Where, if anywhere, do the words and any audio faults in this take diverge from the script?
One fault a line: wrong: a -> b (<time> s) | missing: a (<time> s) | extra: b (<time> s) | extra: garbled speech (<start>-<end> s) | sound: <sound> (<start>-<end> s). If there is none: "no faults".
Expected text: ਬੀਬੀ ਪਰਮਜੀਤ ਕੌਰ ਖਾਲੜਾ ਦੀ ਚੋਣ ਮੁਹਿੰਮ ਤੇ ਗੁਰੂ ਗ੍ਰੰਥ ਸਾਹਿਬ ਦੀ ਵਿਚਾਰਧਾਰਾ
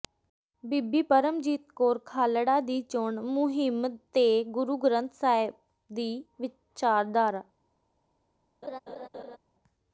sound: laugh (8.6-9.4 s)